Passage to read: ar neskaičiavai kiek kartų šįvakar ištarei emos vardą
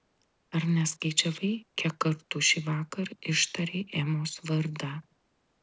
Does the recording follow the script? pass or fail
pass